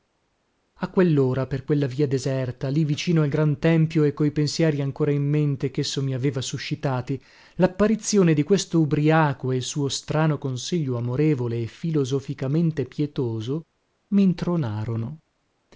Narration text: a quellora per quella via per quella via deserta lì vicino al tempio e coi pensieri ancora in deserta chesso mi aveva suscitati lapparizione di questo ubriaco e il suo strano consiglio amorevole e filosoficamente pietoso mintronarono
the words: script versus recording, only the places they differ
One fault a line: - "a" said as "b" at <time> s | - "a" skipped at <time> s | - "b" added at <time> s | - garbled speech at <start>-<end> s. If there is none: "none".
- "per quella via" skipped at 2.1 s
- "gran" added at 3.3 s
- "deserta" said as "mente" at 5.3 s